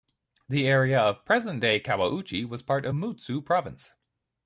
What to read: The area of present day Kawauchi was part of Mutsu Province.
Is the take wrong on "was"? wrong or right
right